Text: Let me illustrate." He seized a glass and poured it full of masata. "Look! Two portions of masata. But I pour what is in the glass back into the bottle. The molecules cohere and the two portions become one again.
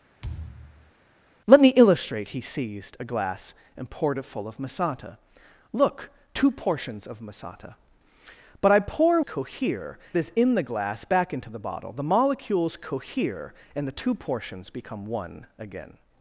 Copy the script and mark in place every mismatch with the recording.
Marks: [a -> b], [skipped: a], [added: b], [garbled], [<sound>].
[thud] Let me illustrate." He seized a glass and poured it full of masata. "Look! Two portions of masata. But I pour [what -> cohere] is in the glass back into the bottle. The molecules cohere and the two portions become one again.